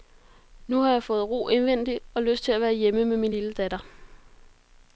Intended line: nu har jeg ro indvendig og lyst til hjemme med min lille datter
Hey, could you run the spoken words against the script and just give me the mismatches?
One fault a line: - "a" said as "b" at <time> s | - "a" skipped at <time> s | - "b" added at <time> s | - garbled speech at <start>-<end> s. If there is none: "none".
- "fået" added at 1.0 s
- "at være" added at 2.5 s